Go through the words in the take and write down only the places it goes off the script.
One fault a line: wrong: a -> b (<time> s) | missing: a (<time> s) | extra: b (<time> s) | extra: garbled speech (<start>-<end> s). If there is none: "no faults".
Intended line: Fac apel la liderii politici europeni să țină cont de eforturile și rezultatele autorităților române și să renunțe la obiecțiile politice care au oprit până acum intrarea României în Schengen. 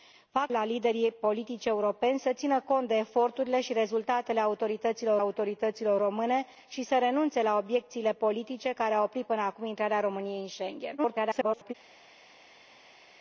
missing: apel (0.5 s)
extra: autorităților (5.2 s)
extra: garbled speech (11.0-11.7 s)